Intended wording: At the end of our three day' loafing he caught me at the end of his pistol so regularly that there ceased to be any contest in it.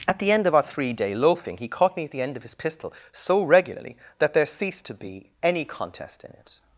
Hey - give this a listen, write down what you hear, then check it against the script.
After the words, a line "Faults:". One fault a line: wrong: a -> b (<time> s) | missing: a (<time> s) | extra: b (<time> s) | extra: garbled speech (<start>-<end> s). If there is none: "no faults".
At the end of our three day' loafing he caught me at the end of his pistol so regularly that there ceased to be any contest in it.
Faults:
no faults